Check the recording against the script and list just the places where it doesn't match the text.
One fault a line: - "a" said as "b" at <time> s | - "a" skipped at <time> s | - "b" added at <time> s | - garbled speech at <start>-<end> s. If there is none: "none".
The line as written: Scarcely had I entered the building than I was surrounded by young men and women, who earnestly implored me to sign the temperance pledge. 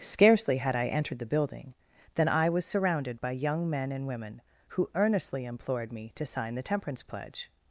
none